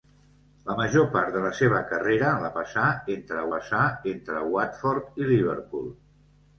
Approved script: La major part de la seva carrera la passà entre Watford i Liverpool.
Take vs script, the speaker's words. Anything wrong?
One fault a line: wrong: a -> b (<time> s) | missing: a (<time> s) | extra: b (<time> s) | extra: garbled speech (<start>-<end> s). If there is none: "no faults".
extra: passà entre (3.5 s)